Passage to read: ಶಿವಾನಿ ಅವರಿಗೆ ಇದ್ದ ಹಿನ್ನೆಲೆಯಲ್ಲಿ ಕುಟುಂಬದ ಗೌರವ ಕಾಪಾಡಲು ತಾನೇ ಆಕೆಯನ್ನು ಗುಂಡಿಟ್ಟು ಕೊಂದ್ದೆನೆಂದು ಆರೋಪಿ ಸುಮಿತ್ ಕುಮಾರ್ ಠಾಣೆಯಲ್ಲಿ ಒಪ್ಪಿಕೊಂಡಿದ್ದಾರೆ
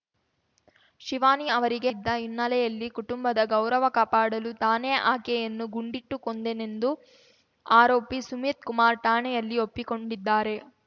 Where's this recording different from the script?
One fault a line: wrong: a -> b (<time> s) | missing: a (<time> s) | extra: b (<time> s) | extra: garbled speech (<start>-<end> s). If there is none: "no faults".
no faults